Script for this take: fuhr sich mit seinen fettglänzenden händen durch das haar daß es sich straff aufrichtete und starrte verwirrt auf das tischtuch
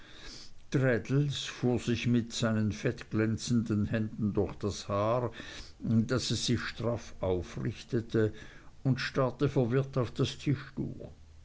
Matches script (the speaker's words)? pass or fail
pass